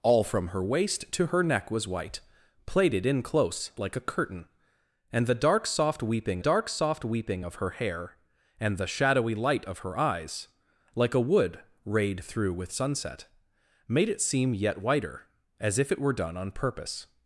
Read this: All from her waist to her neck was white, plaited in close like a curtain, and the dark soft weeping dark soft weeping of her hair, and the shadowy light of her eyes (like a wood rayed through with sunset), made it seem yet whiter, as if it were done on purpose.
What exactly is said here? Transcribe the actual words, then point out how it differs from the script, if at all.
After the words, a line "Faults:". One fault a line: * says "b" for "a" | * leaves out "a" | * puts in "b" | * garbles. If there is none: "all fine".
All from her waist to her neck was white, plaited in close like a curtain, and the dark soft weeping dark soft weeping of her hair, and the shadowy light of her eyes (like a wood rayed through with sunset), made it seem yet whiter, as if it were done on purpose.
Faults:
all fine